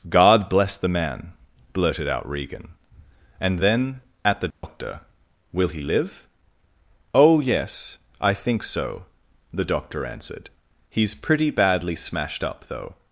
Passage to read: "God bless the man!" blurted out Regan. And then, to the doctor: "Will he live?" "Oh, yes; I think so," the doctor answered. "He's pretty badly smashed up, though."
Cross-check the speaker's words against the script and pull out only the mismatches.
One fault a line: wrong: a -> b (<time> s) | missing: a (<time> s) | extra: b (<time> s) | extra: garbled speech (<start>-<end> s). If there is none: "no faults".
wrong: to -> at (4.2 s)